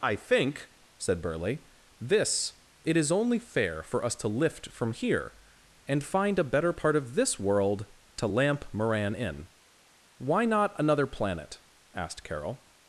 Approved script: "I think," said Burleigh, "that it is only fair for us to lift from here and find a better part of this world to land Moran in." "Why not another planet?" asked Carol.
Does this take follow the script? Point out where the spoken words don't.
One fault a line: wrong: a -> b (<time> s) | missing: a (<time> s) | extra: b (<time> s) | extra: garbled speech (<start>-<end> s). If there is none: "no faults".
wrong: that -> this (2.0 s)
wrong: land -> lamp (8.3 s)